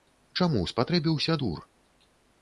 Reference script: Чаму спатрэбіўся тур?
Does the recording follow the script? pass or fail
pass